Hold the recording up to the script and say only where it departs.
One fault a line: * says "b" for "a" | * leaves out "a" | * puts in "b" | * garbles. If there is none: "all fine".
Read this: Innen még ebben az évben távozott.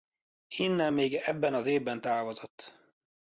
all fine